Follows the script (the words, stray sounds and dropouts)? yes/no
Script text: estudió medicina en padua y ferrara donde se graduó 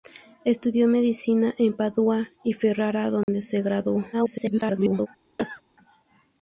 no